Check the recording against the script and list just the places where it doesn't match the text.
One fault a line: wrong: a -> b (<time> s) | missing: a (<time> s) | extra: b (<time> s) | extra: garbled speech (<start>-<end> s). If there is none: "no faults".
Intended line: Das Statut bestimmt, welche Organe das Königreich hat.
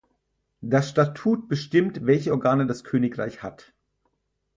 no faults